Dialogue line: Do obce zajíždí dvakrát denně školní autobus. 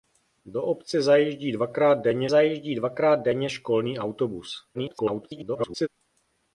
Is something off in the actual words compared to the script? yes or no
yes